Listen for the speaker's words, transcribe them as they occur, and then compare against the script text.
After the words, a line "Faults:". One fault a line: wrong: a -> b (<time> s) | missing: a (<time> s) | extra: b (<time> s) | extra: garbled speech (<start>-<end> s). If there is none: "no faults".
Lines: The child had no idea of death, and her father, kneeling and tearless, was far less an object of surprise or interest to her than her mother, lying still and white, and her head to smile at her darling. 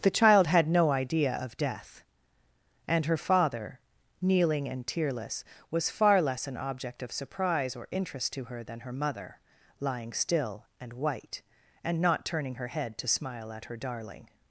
The child had no idea of death, and her father, kneeling and tearless, was far less an object of surprise or interest to her than her mother, lying still and white, and not turning her head to smile at her darling.
Faults:
extra: not turning (12.0 s)